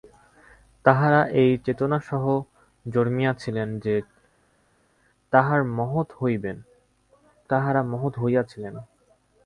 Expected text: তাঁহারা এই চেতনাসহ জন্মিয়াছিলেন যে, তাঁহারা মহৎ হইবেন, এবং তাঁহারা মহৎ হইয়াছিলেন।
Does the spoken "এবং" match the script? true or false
false